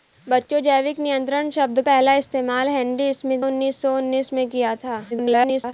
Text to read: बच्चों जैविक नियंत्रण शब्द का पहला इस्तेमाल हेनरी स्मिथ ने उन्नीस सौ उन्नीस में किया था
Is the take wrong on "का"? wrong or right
wrong